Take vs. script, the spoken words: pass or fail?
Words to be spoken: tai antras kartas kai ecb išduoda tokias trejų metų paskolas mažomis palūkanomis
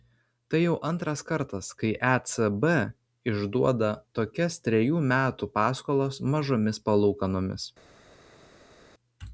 fail